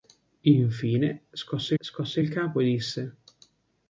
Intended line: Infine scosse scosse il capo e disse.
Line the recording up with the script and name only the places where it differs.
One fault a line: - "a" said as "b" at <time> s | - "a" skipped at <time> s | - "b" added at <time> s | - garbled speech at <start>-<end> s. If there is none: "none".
none